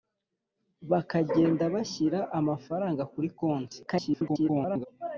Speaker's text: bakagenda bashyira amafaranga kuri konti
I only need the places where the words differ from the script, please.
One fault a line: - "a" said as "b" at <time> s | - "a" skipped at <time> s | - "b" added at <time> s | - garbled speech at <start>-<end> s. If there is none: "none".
- garbled speech at 3.9-4.9 s